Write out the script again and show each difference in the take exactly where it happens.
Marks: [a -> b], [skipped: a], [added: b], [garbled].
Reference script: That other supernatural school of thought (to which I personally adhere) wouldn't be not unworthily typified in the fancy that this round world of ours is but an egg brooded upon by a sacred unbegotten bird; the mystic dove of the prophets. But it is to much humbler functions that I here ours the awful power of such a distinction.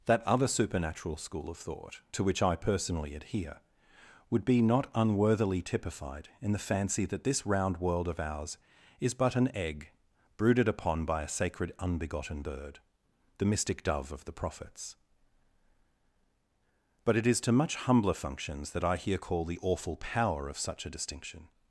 That other supernatural school of thought (to which I personally adhere) [wouldn't -> would] be not unworthily typified in the fancy that this round world of ours is but an egg brooded upon by a sacred unbegotten bird; the mystic dove of the prophets. But it is to much humbler functions that I here [ours -> call] the awful power of such a distinction.